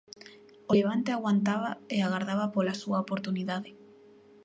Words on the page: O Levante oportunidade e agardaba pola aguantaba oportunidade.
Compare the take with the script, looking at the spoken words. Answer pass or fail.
fail